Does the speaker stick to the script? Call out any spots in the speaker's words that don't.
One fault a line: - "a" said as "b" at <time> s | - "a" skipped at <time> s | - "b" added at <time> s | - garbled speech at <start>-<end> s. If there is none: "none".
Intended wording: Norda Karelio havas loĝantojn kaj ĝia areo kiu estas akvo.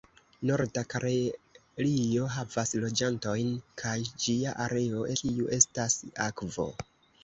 none